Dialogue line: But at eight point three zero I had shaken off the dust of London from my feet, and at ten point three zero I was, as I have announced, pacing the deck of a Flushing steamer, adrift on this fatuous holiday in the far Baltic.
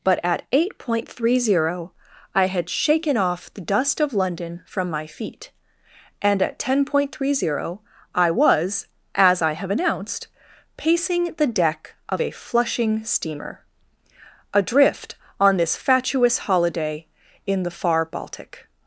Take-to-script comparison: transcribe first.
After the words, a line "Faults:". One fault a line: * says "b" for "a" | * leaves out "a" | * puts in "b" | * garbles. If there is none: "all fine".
But at eight point three zero I had shaken off the dust of London from my feet, and at ten point three zero I was, as I have announced, pacing the deck of a Flushing steamer, adrift on this fatuous holiday in the far Baltic.
Faults:
all fine